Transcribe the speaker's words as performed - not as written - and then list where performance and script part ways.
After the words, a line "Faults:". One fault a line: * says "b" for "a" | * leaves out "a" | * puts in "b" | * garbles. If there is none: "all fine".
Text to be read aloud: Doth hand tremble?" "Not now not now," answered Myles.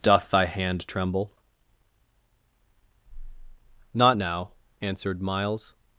Doth thy hand tremble?" "Not now," answered Myles.
Faults:
* puts in "thy"
* leaves out "not now"